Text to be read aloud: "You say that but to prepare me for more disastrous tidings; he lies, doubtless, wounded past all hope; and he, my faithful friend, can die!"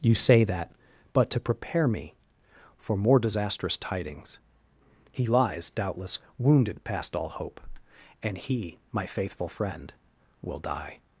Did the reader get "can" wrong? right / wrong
wrong